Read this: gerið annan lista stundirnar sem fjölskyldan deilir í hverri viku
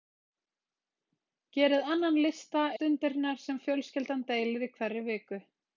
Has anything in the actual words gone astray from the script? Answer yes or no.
no